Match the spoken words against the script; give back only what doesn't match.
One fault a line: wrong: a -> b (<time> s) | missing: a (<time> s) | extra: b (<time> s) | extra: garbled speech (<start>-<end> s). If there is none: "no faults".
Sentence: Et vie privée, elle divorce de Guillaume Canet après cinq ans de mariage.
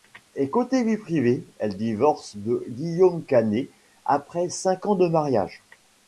extra: côté (0.5 s)